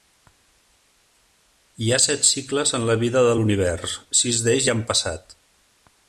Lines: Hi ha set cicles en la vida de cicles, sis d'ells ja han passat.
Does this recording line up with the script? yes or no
no